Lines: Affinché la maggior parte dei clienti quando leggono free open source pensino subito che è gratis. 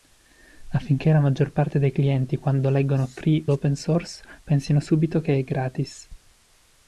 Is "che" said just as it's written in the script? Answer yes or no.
yes